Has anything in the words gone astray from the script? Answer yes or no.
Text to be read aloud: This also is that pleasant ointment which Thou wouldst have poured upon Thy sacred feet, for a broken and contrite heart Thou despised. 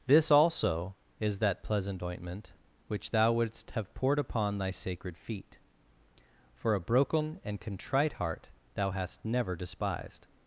yes